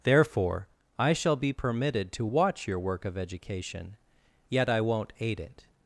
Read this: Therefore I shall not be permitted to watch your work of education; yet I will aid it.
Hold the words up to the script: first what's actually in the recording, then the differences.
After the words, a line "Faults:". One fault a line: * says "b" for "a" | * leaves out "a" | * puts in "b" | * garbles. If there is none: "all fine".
Therefore I shall be permitted to watch your work of education; yet I won't aid it.
Faults:
* leaves out "not"
* says "won't" for "will"